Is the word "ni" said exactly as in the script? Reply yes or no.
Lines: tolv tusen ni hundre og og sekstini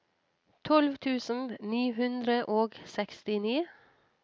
yes